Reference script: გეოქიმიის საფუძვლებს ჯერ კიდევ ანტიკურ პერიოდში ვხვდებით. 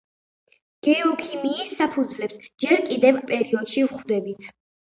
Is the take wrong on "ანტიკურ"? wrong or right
wrong